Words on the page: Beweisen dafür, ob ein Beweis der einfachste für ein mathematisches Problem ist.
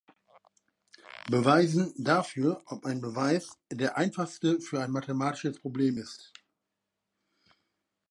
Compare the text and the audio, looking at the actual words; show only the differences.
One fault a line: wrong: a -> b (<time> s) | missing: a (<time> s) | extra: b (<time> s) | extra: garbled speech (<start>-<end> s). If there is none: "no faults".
no faults